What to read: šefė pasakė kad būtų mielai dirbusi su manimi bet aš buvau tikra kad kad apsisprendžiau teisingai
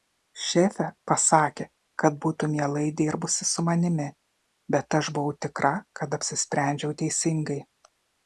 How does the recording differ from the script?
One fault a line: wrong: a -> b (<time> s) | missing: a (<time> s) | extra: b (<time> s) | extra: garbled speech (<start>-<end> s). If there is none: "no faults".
missing: kad (6.2 s)